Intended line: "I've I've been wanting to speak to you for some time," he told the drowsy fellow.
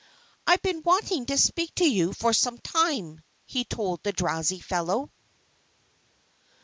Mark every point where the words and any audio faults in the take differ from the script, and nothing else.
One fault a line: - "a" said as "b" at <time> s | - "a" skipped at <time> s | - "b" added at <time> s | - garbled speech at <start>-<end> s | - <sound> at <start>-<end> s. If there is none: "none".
- "I've" skipped at 0.6 s